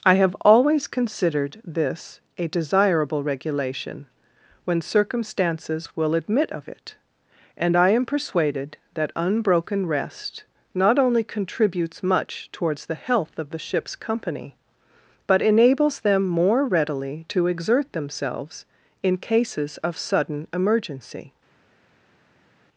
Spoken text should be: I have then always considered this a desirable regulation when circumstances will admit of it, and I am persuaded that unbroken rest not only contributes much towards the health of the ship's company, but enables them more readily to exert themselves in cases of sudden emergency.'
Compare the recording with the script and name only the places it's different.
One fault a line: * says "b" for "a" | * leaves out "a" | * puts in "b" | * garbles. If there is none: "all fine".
* leaves out "then"